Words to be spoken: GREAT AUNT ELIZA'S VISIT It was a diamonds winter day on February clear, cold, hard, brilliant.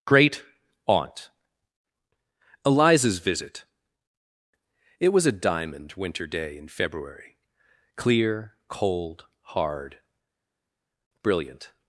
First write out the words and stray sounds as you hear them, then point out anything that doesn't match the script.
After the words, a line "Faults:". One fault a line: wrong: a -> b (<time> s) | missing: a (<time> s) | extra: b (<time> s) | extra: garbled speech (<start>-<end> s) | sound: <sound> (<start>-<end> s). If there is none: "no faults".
GREAT AUNT ELIZA'S VISIT It was a diamond winter day in February clear, cold, hard, brilliant.
Faults:
wrong: diamonds -> diamond (5.3 s)
wrong: on -> in (6.6 s)